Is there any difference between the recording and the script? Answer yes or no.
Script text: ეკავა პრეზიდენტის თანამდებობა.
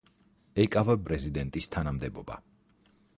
no